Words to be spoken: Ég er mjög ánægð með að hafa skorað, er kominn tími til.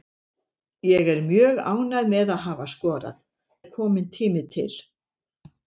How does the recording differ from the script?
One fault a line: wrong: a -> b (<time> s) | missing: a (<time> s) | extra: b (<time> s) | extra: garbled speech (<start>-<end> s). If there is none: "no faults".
no faults